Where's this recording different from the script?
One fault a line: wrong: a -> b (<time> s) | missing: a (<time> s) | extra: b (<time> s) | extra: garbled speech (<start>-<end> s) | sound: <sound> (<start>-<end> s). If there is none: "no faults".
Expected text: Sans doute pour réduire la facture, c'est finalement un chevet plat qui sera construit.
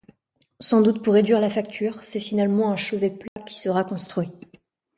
sound: dropout (3.3-3.4 s)